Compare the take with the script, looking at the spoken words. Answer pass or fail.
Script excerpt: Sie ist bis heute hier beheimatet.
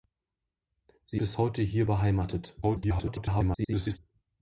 fail